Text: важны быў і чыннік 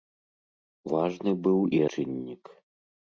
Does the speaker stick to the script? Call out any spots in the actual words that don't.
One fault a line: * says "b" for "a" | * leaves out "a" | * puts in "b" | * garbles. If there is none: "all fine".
all fine